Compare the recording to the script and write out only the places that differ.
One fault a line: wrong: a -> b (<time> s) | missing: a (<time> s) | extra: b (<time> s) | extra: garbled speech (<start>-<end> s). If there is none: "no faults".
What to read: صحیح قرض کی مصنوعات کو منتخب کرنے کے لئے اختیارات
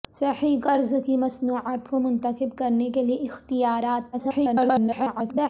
extra: garbled speech (4.1-5.5 s)